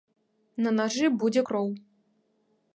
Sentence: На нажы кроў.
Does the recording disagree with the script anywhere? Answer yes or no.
yes